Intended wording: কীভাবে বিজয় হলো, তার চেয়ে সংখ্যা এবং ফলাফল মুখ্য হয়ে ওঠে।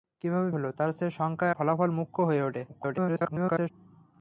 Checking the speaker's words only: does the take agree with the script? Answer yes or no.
no